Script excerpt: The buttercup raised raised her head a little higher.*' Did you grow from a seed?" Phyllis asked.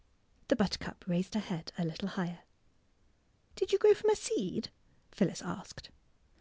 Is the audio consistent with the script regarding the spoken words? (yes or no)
no